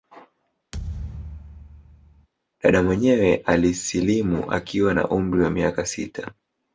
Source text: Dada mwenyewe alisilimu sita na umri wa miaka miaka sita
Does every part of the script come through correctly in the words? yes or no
no